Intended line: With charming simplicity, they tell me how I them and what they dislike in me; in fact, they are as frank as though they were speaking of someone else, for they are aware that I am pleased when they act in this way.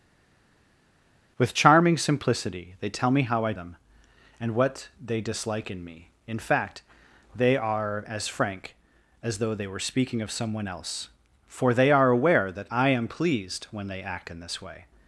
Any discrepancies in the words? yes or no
no